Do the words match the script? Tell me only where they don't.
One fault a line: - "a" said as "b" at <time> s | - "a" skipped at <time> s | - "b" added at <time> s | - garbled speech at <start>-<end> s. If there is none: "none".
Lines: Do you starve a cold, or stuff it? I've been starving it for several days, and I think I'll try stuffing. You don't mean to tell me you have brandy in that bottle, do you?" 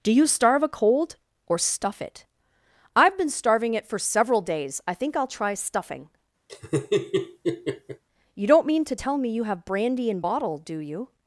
- "and" skipped at 4.8 s
- "that" skipped at 10.2 s